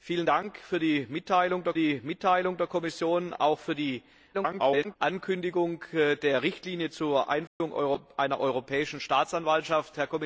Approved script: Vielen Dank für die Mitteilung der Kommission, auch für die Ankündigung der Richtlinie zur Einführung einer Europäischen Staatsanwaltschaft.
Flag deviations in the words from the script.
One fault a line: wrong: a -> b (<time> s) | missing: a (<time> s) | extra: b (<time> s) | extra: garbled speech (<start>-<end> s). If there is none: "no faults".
extra: die Mitteilung der (1.7 s)
extra: garbled speech (4.3-5.0 s)